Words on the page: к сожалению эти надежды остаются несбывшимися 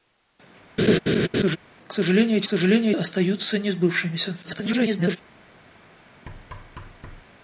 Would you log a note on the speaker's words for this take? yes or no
yes